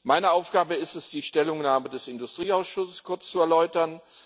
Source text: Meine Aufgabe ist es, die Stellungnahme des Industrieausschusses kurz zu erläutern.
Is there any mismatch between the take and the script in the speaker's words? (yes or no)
no